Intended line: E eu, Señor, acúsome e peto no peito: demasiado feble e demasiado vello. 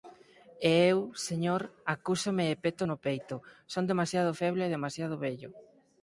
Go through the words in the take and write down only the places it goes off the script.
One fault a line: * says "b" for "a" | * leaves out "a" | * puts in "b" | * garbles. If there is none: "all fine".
* puts in "son"